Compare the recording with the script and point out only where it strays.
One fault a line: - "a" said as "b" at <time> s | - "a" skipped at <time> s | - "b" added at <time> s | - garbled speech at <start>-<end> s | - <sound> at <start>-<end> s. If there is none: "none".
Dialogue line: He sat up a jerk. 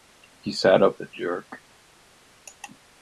none